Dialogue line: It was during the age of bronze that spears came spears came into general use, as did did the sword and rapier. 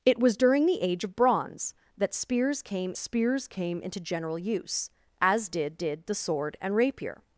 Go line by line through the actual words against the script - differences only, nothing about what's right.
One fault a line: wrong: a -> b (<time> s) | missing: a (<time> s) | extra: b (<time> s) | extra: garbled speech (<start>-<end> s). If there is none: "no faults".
no faults